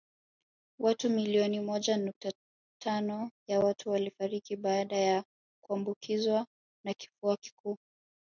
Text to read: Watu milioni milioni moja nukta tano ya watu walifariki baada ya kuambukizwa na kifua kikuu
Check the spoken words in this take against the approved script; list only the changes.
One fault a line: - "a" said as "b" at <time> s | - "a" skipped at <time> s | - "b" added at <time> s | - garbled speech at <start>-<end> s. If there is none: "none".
- "milioni" skipped at 1.6 s